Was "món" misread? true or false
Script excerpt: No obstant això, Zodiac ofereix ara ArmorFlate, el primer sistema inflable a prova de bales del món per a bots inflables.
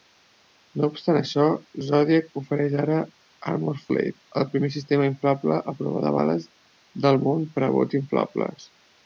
false